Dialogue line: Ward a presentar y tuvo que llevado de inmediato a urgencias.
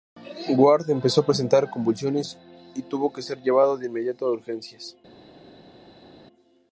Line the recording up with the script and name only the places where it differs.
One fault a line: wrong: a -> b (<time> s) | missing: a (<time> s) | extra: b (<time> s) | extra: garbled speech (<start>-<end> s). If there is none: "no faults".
extra: empezó (0.9 s)
extra: convulsiones (1.7 s)
extra: ser (3.2 s)